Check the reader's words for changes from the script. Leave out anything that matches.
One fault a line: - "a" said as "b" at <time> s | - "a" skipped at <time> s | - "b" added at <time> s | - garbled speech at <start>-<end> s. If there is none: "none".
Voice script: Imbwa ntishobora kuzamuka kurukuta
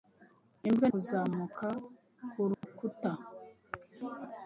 - "ntishobora" skipped at 0.9 s